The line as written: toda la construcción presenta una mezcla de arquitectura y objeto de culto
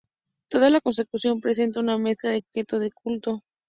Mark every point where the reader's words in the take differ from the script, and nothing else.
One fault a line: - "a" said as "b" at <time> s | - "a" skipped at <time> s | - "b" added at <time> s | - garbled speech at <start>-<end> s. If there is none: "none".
- "arquitectura y" skipped at 2.4 s